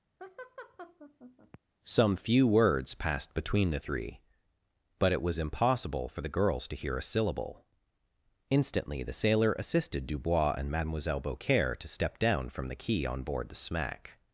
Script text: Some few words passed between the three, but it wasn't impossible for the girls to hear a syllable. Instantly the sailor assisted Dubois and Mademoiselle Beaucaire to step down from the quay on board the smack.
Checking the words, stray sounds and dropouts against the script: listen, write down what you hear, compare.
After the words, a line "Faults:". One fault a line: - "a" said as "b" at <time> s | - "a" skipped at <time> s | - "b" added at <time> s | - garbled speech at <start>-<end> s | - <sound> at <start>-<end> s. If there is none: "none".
Some few words passed between the three, but it was impossible for the girls to hear a syllable. Instantly the sailor assisted Dubois and Mademoiselle Beaucaire to step down from the quay on board the smack.
Faults:
- laugh at 0.2-1.6 s
- "wasn't" said as "was" at 5.2 s